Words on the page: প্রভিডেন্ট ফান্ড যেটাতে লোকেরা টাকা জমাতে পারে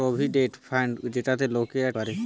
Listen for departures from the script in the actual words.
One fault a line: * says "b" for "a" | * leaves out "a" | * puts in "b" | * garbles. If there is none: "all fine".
* leaves out "টাকা জমাতে"